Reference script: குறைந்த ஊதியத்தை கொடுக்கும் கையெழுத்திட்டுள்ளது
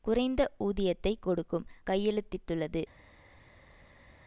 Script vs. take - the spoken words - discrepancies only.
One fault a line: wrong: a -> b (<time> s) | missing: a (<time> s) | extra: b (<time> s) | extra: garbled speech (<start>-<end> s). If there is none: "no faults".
no faults